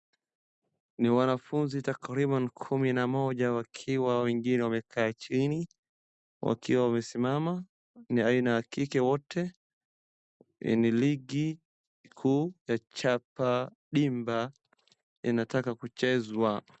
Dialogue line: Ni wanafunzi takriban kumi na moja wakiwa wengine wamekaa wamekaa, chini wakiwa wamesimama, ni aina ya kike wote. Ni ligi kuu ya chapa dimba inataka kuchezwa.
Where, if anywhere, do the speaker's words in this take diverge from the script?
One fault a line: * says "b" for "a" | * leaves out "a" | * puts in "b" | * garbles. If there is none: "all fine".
* leaves out "wamekaa"